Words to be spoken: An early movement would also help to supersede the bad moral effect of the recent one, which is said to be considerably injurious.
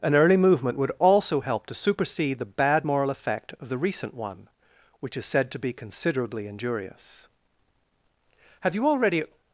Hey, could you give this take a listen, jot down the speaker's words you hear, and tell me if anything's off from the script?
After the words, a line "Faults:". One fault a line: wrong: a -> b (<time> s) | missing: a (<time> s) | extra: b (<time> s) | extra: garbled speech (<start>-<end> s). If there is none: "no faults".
An early movement would also help to supersede the bad moral effect of the recent one, which is said to be considerably injurious. Have you already
Faults:
extra: Have you already (8.6 s)